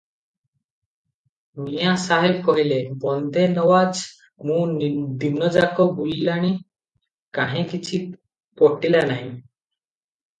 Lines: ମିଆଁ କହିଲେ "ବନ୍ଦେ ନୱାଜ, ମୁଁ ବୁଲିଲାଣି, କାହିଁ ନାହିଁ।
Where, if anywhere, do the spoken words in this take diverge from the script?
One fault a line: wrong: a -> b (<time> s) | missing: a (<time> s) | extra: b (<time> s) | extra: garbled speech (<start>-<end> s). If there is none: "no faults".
extra: ସାହେବ (2.0 s)
extra: ଦିନଯାକ (5.2 s)
extra: କିଛି ପଟିଲା (7.7 s)